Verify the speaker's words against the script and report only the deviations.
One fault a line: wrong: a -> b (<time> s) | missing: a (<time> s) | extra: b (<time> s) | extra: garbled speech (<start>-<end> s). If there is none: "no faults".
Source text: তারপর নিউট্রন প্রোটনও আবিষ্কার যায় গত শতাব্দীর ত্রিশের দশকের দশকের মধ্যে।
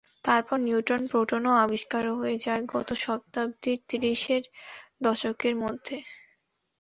extra: হয়ে (2.1 s)
missing: দশকের (5.5 s)